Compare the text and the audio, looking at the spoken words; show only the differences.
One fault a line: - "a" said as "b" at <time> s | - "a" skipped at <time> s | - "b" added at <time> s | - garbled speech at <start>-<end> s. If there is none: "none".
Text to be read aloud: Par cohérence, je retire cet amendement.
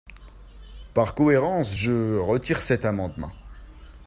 none